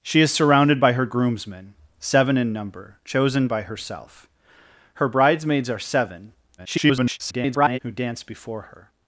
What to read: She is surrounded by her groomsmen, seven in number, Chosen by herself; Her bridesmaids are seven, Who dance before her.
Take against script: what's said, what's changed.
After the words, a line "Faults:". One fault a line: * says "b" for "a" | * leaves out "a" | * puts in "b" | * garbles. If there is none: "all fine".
She is surrounded by her groomsmen, seven in number, Chosen by herself; Her bridesmaids are seven, [garbled] Who dance before her.
Faults:
* garbles